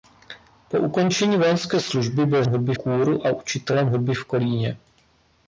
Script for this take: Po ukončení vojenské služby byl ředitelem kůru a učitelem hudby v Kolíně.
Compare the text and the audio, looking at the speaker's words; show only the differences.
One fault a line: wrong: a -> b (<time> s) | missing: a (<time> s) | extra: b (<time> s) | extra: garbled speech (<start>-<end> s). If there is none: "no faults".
wrong: ředitelem -> hudby (2.5 s)